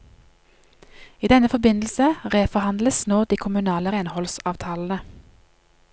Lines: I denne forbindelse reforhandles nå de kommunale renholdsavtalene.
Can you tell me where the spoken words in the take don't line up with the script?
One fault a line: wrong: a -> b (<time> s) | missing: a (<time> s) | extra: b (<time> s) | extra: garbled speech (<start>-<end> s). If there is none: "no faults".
no faults